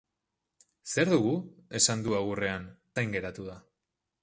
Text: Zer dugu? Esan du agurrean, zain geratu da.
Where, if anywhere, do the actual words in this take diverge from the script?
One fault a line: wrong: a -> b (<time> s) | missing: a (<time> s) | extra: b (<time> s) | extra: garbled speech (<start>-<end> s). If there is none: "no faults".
no faults